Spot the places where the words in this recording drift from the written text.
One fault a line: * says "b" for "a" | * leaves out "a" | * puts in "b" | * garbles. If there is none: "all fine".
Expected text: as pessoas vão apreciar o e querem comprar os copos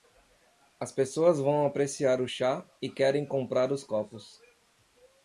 * puts in "chá"